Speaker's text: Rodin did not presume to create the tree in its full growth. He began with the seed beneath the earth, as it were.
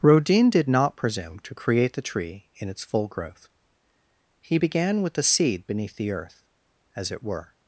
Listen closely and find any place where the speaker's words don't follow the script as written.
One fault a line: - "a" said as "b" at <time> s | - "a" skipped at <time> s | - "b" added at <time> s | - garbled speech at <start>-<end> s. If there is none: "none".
none